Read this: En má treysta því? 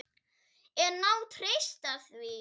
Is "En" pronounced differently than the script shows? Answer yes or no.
no